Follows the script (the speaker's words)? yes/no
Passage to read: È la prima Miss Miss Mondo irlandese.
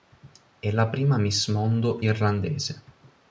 no